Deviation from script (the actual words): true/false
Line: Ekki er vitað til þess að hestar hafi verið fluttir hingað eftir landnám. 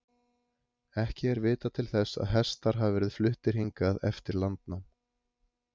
false